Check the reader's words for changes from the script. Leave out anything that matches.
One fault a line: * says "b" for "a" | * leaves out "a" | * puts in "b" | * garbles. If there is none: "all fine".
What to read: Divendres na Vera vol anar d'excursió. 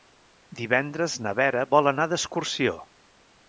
all fine